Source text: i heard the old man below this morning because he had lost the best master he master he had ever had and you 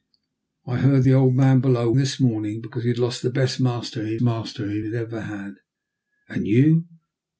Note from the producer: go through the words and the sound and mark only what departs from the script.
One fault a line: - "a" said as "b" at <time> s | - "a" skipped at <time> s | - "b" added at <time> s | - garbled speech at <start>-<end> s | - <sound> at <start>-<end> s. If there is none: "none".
none